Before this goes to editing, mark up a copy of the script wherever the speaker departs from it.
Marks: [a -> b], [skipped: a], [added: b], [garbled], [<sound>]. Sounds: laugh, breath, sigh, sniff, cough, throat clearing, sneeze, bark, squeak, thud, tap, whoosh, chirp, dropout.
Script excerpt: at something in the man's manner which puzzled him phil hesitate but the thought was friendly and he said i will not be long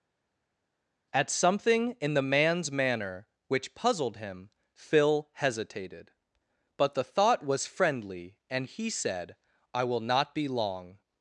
at something in the man's manner which puzzled him phil [hesitate -> hesitated] but the thought was friendly and he said i will not be long